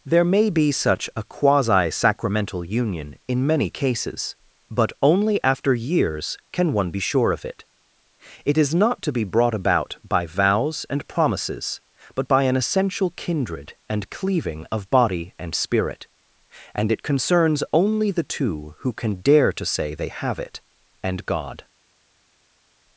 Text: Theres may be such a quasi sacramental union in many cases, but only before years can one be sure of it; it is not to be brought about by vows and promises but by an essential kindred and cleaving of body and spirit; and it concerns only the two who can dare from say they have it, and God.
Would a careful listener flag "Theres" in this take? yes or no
yes